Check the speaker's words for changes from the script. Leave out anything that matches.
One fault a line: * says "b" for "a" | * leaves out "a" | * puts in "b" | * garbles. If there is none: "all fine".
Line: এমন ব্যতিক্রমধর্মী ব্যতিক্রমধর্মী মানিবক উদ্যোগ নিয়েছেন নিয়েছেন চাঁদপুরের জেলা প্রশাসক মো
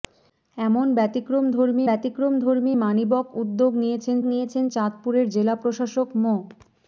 all fine